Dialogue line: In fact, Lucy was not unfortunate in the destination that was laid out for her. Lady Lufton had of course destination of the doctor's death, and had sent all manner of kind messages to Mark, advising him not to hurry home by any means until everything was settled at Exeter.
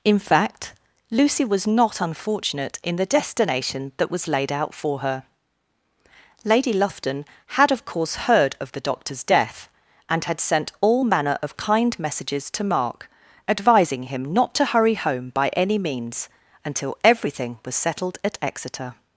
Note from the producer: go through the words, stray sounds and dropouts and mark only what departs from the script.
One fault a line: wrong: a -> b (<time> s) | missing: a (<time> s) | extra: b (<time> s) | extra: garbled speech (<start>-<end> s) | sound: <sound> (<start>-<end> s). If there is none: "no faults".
wrong: destination -> heard (8.2 s)